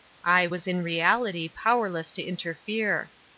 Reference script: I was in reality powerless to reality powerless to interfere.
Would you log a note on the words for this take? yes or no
yes